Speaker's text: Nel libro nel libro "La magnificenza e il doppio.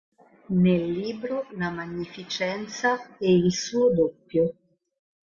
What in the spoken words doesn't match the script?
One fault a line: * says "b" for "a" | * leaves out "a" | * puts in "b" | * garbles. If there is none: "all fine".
* leaves out "nel libro"
* puts in "suo"